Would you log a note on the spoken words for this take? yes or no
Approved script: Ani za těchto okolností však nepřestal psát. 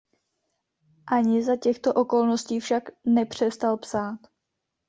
no